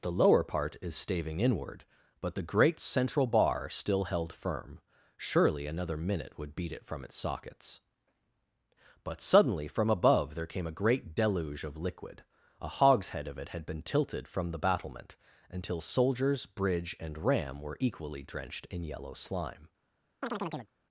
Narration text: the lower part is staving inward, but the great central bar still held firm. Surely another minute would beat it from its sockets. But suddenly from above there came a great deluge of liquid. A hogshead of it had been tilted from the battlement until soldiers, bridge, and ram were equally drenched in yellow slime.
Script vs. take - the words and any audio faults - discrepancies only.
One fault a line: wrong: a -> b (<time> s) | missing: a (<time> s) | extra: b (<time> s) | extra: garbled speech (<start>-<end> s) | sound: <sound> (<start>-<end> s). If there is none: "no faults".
sound: chirp (20.2-20.7 s)